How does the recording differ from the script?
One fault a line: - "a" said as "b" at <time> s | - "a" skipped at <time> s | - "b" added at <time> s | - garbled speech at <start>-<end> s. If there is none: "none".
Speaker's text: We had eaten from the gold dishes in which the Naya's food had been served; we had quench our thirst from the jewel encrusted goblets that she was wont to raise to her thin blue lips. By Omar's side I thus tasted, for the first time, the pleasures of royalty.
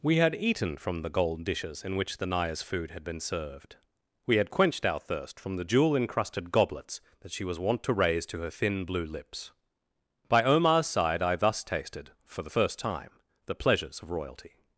- "quench" said as "quenched" at 4.5 s